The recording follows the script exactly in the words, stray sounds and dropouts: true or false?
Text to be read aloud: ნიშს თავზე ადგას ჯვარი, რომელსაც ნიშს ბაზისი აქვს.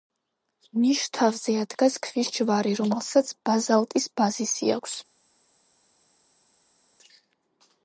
false